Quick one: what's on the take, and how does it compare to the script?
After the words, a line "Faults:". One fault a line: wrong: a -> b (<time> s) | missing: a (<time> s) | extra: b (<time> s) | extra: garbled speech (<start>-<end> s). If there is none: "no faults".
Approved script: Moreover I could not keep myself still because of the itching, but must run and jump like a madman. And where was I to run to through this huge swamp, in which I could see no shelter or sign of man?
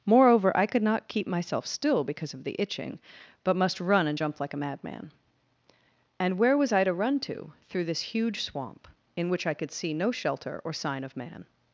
Moreover I could not keep myself still because of the itching, but must run and jump like a madman. And where was I to run to through this huge swamp, in which I could see no shelter or sign of man?
Faults:
no faults